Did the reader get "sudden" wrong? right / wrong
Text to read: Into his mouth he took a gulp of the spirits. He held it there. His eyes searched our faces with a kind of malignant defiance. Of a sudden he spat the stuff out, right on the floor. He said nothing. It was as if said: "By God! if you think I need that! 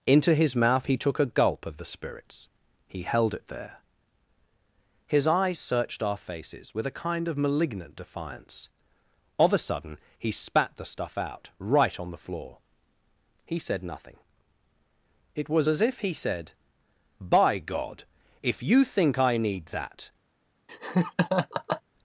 right